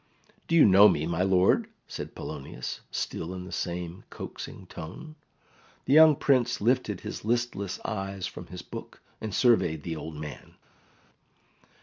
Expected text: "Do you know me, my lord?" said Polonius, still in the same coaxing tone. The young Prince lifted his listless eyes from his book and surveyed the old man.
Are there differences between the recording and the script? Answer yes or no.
no